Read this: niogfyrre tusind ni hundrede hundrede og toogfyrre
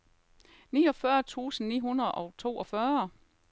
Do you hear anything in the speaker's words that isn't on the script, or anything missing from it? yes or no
yes